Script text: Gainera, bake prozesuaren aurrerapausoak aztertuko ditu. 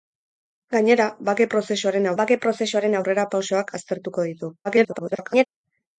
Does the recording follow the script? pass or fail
fail